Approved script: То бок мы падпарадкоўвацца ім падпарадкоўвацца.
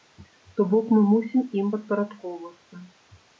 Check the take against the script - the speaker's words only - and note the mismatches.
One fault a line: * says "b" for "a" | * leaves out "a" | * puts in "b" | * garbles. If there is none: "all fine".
* says "мусім" for "падпарадкоўвацца"